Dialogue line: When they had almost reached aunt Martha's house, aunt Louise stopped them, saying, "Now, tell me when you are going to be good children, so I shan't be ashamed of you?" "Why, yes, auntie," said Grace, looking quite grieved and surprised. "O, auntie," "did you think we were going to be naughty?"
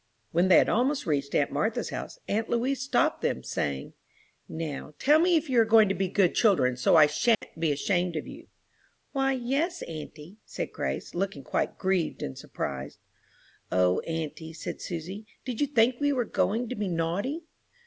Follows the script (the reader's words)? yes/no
no